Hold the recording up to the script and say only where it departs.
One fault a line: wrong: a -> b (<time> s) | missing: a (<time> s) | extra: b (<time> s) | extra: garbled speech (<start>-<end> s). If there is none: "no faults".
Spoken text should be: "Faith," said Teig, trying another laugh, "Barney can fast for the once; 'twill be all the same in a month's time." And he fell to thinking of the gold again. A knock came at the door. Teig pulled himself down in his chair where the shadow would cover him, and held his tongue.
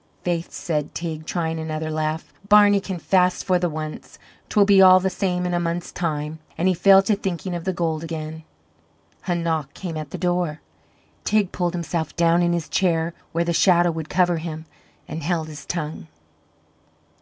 no faults